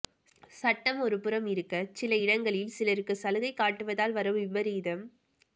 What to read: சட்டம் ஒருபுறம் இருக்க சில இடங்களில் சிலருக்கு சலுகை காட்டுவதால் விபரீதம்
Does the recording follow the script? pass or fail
fail